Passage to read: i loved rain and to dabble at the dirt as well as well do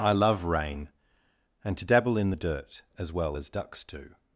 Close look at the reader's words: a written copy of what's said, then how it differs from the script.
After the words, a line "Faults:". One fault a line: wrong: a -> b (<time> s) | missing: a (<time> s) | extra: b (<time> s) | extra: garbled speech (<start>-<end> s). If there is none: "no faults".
i love rain and to dabble in the dirt as well as ducks do
Faults:
wrong: loved -> love (0.1 s)
wrong: at -> in (2.2 s)
wrong: well -> ducks (3.5 s)